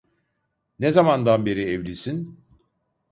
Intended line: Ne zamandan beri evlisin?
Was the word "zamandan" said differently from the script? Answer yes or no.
no